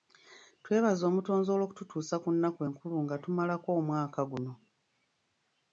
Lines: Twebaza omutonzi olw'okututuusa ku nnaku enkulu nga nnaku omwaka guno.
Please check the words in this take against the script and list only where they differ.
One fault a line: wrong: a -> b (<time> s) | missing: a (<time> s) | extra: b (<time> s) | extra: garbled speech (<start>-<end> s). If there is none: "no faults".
wrong: nnaku -> tumalako (3.2 s)